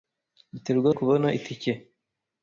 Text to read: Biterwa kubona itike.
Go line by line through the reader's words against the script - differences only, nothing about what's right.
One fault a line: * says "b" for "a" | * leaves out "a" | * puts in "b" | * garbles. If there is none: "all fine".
all fine